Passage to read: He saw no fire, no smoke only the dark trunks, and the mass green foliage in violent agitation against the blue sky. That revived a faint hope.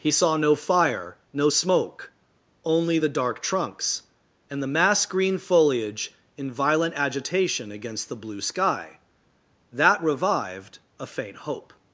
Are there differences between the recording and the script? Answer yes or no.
no